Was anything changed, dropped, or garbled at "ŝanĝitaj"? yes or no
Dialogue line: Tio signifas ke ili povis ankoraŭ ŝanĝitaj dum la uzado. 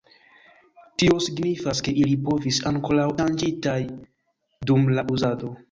no